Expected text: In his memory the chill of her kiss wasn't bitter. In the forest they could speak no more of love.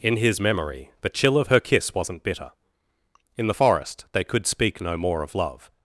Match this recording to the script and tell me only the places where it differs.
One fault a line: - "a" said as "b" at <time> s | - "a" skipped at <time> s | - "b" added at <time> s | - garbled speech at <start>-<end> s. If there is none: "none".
none